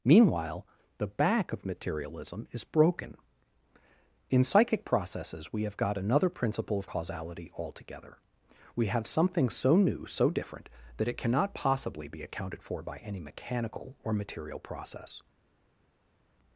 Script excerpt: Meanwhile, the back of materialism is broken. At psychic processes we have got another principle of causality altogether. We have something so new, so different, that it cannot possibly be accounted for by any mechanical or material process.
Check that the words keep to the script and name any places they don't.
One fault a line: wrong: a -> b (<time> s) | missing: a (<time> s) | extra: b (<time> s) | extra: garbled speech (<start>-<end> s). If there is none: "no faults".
wrong: At -> In (4.3 s)